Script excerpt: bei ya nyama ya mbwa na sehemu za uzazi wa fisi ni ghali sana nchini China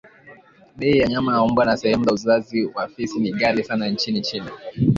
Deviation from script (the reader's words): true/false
false